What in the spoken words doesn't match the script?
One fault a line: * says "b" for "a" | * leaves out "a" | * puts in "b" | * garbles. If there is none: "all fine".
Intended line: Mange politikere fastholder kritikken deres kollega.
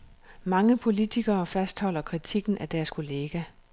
* puts in "af"